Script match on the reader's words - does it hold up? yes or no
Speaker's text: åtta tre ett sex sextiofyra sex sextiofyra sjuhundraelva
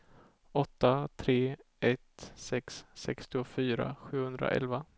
no